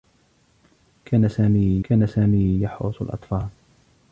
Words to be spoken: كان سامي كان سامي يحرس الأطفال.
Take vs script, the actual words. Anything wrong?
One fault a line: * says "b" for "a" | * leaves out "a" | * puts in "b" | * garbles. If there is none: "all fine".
all fine